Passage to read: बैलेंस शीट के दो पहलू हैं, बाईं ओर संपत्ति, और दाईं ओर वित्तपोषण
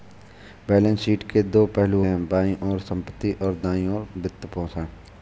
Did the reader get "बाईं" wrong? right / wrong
right